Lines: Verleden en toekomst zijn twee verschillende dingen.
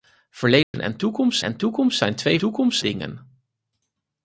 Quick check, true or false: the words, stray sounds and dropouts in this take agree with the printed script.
false